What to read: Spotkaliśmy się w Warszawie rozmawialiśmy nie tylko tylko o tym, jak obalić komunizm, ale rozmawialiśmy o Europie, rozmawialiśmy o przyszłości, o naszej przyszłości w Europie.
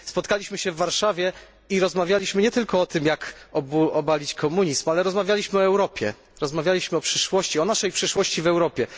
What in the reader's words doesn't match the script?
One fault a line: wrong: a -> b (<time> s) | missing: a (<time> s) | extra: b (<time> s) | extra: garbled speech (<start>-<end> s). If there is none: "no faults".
extra: i (1.7 s)
missing: tylko (2.8 s)